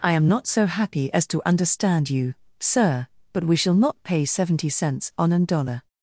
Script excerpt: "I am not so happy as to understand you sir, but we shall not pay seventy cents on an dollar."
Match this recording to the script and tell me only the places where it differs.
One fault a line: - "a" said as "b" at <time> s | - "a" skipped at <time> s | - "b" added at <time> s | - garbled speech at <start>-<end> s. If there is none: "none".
none